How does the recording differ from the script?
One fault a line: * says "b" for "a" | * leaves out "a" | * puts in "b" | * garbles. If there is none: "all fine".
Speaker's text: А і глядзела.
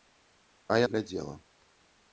all fine